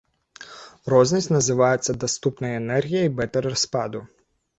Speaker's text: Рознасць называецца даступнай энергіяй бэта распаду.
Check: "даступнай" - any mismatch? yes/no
no